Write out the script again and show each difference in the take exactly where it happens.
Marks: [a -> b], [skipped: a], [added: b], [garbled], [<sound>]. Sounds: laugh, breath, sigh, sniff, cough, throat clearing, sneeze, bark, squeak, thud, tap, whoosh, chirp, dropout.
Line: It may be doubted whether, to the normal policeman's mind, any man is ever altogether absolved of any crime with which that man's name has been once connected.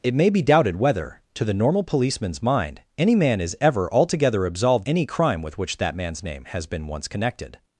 It may be doubted whether, to the normal policeman's mind, any man is ever altogether absolved [skipped: of] any crime with which that man's name has been once connected.